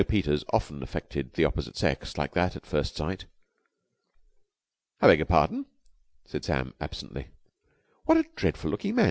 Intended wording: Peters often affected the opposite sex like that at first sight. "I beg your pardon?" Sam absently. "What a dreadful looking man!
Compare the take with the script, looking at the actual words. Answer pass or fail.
fail